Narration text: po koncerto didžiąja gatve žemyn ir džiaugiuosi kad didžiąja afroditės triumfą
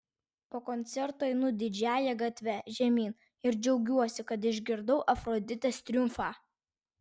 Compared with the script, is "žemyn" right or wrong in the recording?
right